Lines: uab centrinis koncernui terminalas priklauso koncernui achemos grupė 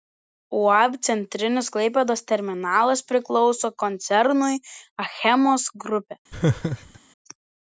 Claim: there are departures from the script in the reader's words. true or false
true